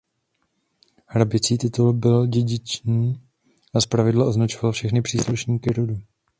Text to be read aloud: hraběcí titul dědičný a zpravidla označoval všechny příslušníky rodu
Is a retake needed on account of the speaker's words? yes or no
yes